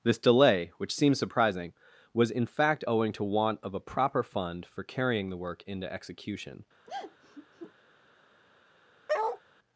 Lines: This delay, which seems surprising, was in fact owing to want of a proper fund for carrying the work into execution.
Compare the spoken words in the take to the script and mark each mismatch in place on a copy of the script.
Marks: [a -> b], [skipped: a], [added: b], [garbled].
This delay, which seems surprising, was in fact owing to want of a proper fund for carrying the work into execution.